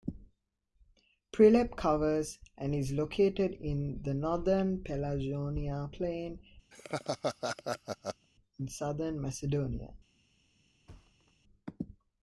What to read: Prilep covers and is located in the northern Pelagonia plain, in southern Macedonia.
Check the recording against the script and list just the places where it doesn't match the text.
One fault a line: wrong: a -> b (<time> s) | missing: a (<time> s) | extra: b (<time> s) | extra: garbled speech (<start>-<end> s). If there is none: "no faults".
no faults